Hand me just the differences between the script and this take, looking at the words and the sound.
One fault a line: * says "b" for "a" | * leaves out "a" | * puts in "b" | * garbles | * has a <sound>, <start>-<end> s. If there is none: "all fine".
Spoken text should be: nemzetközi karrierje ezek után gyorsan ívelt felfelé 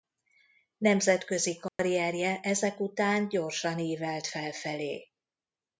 * has a dropout, 1.7-1.8 s